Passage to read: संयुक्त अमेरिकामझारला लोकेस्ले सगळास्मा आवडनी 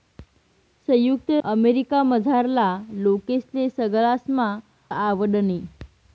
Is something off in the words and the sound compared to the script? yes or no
no